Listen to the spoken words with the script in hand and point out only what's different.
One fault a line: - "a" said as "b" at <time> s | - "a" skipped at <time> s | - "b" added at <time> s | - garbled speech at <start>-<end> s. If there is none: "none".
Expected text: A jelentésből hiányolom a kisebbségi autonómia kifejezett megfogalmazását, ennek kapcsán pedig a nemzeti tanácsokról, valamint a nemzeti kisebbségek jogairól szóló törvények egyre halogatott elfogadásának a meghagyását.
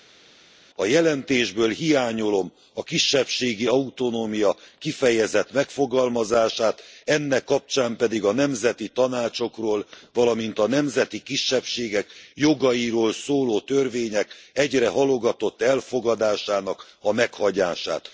none